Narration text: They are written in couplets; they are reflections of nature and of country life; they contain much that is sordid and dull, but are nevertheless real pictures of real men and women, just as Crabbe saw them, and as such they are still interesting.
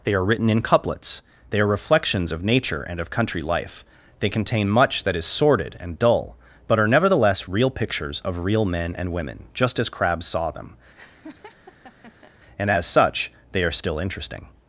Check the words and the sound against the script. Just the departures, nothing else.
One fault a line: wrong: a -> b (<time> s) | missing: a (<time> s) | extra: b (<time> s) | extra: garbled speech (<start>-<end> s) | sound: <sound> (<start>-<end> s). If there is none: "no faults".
sound: laugh (10.9-12.3 s)